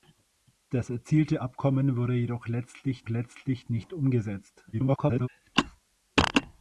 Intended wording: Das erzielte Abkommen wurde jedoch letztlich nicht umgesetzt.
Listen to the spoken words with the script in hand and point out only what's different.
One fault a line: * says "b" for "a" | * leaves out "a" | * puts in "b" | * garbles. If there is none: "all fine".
* puts in "letztlich"
* garbles